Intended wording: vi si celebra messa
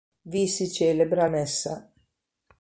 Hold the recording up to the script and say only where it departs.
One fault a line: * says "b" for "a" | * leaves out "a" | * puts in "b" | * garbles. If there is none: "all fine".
all fine